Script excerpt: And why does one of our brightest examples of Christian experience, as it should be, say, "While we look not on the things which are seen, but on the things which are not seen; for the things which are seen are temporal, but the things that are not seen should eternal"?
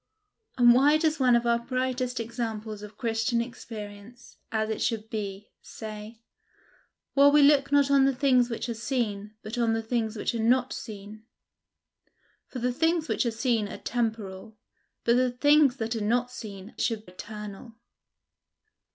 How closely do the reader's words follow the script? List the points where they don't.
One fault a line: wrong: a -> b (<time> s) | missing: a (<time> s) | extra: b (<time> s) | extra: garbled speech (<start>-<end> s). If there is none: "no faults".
no faults